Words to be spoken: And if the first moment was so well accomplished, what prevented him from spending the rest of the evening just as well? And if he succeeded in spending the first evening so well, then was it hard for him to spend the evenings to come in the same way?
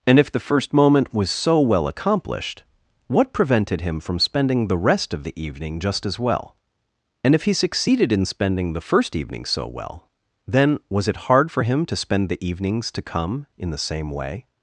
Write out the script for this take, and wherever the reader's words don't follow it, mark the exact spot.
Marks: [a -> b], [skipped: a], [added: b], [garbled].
And if the first moment was so well accomplished, what prevented him from spending the rest of the evening just as well? And if he succeeded in spending the first evening so well, then was it hard for him to spend the evenings to come in the same way?